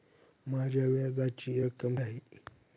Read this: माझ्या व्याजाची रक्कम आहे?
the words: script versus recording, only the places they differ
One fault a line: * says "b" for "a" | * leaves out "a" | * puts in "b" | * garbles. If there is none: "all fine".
all fine